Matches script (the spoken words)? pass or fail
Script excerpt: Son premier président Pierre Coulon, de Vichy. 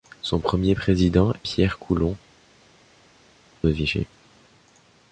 pass